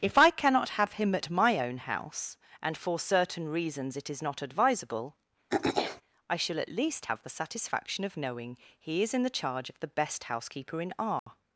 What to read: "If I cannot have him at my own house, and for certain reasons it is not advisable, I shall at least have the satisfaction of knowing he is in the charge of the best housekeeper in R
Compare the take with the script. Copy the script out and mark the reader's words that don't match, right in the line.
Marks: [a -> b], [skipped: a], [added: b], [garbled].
"If I cannot have him at my own house, and for certain reasons it is not advisable, I shall at least have the satisfaction of knowing he is in the charge of the best housekeeper in R